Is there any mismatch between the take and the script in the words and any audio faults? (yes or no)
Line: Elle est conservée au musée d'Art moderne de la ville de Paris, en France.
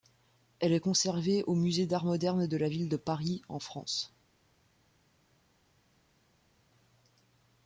no